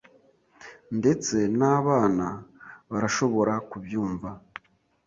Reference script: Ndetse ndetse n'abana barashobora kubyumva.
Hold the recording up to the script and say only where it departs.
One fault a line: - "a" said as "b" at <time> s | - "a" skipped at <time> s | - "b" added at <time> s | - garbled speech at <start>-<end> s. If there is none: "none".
- "ndetse" skipped at 1.4 s